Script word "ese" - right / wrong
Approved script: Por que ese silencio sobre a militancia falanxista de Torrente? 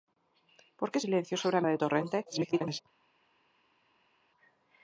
wrong